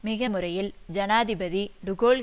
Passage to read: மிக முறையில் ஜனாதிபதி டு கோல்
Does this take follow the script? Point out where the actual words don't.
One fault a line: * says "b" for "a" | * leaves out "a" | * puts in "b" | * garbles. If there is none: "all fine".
all fine